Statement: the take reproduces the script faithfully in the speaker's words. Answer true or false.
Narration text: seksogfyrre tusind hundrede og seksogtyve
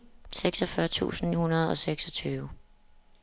true